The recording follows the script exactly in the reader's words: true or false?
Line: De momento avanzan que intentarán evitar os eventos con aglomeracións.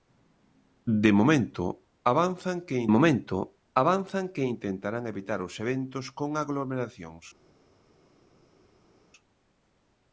false